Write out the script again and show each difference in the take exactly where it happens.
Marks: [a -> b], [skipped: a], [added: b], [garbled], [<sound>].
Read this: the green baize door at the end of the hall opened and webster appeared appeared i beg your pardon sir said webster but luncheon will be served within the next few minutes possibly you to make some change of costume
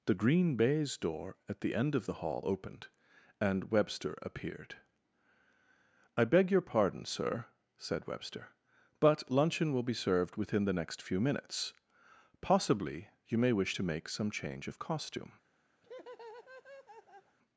the green baize door at the end of the hall opened and webster appeared [skipped: appeared] i beg your pardon sir said webster but luncheon will be served within the next few minutes possibly you [added: may wish] to make some change of costume [laugh]